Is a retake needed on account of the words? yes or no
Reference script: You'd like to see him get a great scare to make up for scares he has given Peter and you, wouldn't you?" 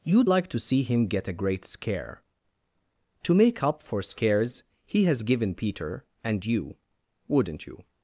no